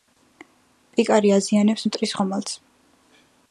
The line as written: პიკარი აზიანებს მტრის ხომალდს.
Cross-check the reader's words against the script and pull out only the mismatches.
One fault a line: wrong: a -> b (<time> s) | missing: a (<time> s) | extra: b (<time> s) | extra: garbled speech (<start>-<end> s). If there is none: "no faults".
no faults